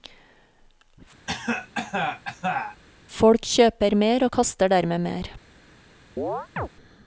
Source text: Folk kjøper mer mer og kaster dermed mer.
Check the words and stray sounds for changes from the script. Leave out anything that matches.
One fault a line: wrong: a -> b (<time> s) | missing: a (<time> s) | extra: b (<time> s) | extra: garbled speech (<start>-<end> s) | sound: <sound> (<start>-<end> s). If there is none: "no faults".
sound: cough (1.3-2.8 s)
missing: mer (4.3 s)
sound: chirp (6.2-6.7 s)